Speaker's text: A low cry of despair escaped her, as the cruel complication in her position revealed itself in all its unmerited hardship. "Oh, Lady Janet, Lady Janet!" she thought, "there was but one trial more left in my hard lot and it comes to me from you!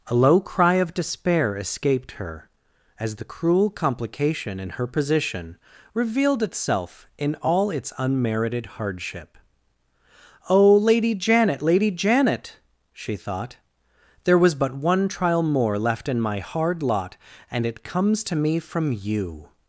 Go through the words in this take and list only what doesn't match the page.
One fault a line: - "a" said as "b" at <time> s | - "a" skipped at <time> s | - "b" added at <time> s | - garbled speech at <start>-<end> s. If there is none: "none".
none